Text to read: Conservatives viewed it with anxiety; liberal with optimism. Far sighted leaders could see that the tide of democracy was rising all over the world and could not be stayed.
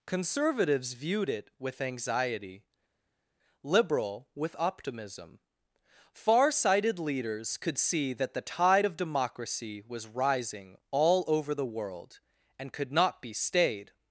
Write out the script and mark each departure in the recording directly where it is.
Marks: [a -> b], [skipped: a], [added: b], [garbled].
Conservatives viewed it with anxiety; liberal with optimism. Far sighted leaders could see that the tide of democracy was rising all over the world and could not be stayed.